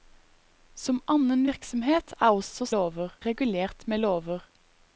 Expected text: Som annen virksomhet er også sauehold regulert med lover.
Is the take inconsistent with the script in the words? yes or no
yes